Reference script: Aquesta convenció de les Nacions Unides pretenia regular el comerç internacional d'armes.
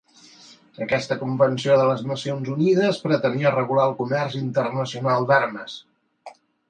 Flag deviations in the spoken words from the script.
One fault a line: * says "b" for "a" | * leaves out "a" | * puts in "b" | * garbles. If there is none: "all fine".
all fine